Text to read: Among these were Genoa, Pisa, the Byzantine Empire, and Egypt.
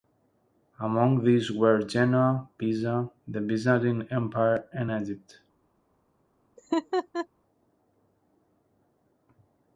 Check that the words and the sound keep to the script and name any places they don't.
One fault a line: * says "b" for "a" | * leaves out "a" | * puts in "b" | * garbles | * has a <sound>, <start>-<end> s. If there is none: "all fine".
* has a laugh, 6.6-7.3 s